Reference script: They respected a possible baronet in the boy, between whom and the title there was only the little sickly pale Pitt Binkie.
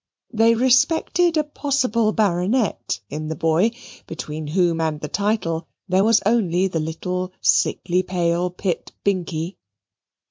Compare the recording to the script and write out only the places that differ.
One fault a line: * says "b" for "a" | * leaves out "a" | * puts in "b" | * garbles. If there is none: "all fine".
all fine